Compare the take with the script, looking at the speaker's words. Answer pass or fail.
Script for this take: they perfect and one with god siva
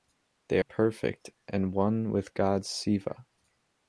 pass